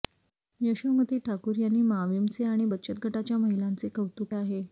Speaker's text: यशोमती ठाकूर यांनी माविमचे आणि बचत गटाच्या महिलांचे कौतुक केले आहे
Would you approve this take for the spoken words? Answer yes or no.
no